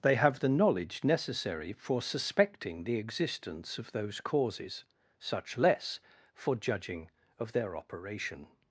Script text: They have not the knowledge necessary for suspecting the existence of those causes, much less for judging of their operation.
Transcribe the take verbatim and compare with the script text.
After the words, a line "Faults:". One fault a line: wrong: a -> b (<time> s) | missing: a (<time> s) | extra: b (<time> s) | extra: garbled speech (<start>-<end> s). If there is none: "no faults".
They have the knowledge necessary for suspecting the existence of those causes, such less for judging of their operation.
Faults:
missing: not (0.4 s)
wrong: much -> such (5.2 s)